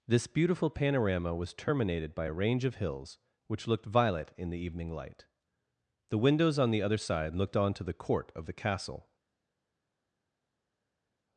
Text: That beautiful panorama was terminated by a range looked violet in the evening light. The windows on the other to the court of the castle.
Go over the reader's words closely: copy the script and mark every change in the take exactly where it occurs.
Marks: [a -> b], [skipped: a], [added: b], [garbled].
[That -> This] beautiful panorama was terminated by a range [added: of hills which] looked violet in the evening light. The windows on the other [added: side looked on] to the court of the castle.